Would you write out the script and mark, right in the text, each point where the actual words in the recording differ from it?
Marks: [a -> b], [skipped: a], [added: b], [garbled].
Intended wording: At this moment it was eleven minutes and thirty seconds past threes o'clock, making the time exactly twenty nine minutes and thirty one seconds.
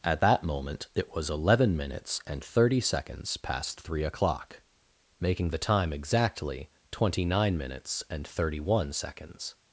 At [this -> that] moment it was eleven minutes and thirty seconds past [threes -> three] o'clock, making the time exactly twenty nine minutes and thirty one seconds.